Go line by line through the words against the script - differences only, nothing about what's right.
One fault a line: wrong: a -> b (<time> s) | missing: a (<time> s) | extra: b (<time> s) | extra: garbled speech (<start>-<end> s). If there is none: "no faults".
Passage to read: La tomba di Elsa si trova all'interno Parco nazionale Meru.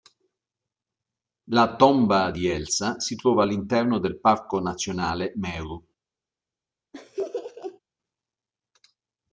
extra: del (4.0 s)